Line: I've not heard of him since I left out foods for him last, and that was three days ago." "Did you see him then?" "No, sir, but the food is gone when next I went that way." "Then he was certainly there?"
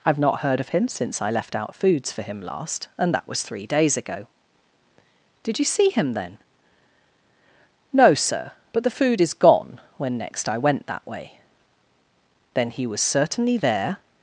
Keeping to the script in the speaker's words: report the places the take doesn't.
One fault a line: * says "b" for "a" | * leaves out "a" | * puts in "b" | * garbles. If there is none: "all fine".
all fine